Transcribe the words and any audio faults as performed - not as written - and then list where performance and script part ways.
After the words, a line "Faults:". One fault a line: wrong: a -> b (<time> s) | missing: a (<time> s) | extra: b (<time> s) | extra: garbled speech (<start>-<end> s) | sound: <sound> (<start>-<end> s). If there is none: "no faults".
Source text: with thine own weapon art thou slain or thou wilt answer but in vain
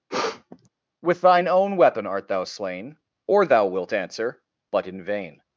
with thine own weapon art thou slain or thou wilt answer but in vain
Faults:
sound: sniff (0.1-0.7 s)